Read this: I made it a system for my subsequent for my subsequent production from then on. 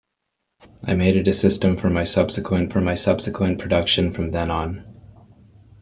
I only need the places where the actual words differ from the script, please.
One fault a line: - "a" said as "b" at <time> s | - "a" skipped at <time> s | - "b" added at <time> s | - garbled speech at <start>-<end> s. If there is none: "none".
none